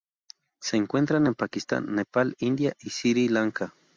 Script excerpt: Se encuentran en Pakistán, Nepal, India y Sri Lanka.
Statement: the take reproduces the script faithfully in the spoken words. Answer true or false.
true